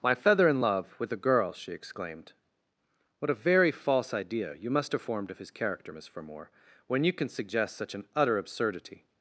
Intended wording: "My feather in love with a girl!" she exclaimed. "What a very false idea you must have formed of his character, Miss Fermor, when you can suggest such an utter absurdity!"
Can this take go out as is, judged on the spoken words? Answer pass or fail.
pass